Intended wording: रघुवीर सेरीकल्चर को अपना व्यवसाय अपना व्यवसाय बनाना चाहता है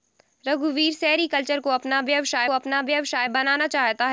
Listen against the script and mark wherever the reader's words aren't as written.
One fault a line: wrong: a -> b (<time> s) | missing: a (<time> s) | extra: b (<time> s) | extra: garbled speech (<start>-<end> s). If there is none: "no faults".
no faults